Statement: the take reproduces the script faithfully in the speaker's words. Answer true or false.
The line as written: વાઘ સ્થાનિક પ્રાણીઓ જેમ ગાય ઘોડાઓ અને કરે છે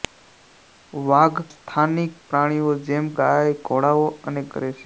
true